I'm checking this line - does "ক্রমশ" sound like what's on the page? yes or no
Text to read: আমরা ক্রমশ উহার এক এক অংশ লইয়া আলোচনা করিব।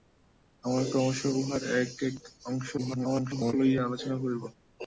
yes